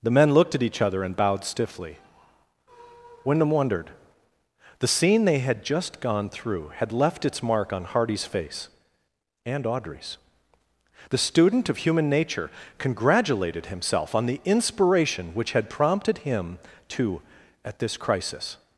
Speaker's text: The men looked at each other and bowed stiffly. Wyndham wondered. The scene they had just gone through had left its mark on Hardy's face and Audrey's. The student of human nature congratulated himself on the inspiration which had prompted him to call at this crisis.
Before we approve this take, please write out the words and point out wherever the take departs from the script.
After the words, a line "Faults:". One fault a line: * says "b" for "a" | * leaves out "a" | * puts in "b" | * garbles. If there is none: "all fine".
The men looked at each other and bowed stiffly. Wyndham wondered. The scene they had just gone through had left its mark on Hardy's face and Audrey's. The student of human nature congratulated himself on the inspiration which had prompted him to at this crisis.
Faults:
* leaves out "call"